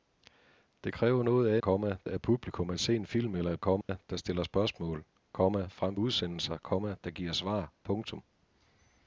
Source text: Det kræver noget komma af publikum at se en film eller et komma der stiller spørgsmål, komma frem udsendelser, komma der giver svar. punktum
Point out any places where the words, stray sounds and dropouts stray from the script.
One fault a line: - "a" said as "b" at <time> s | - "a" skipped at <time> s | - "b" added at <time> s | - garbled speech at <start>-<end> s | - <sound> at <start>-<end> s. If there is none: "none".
- dropout at 3.8-3.9 s